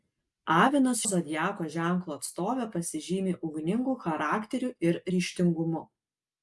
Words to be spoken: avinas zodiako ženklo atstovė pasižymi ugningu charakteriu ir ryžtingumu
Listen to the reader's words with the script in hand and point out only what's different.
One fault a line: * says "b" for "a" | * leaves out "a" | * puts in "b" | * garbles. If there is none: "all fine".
all fine